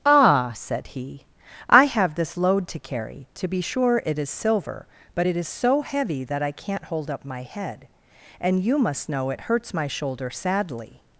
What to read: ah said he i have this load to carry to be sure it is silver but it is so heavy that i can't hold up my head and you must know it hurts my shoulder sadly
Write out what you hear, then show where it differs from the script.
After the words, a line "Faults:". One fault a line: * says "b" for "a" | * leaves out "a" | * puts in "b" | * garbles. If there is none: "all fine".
ah said he i have this load to carry to be sure it is silver but it is so heavy that i can't hold up my head and you must know it hurts my shoulder sadly
Faults:
all fine